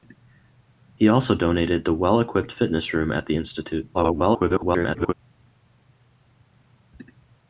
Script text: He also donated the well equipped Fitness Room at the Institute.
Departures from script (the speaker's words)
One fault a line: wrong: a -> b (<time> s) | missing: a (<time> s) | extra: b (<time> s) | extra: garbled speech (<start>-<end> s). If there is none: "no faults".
extra: garbled speech (3.9-5.1 s)